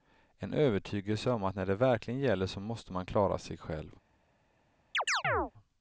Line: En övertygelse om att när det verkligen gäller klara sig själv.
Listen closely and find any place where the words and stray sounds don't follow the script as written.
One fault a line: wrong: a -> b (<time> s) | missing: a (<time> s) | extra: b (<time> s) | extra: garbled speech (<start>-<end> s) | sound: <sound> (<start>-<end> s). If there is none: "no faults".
extra: så måste man (2.5 s)
sound: chirp (4.9-5.5 s)